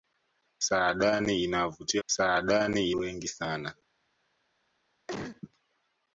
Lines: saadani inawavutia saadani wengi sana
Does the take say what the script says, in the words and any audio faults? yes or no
no